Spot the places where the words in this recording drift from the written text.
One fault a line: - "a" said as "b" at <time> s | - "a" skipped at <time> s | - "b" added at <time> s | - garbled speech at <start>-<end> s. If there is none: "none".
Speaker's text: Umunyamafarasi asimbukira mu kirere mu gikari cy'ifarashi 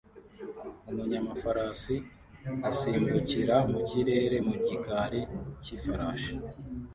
none